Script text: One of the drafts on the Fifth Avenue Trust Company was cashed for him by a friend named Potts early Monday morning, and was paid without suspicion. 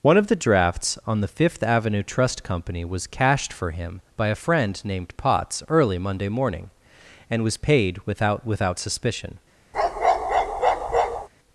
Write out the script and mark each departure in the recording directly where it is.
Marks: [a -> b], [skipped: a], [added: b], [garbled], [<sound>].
One of the drafts on the Fifth Avenue Trust Company was cashed for him by a friend named Potts early Monday morning, and was paid without [added: without] suspicion. [bark]